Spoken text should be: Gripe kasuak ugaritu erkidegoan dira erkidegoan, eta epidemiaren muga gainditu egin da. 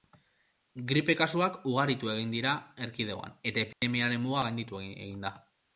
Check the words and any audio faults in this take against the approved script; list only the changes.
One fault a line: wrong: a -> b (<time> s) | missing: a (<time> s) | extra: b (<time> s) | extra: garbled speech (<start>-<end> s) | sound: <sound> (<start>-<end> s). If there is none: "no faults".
wrong: erkidegoan -> egin (2.1 s)
sound: dropout (3.7-3.8 s)